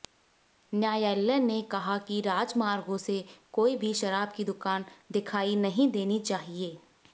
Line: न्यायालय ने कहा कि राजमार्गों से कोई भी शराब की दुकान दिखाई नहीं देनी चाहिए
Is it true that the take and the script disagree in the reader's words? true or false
false